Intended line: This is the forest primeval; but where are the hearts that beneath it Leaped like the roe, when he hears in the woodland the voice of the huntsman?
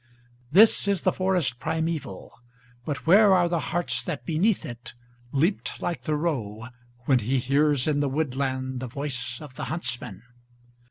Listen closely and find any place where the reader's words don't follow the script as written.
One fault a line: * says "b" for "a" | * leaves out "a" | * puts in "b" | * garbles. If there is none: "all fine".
all fine